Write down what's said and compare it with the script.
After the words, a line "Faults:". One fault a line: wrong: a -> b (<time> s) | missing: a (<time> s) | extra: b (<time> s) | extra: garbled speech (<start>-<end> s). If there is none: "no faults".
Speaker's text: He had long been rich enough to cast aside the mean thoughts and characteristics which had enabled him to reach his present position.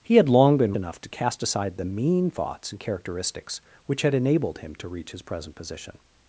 He had long been enough to cast aside the mean thoughts and characteristics which had enabled him to reach his present position.
Faults:
missing: rich (0.8 s)